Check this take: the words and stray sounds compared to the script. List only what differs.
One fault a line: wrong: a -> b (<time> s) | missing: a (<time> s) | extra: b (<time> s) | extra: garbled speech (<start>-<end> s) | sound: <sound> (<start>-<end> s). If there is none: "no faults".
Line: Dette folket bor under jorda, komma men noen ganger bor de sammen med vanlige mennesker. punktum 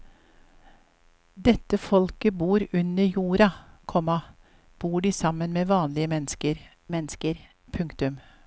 missing: men noen ganger (4.2 s)
extra: mennesker (6.9 s)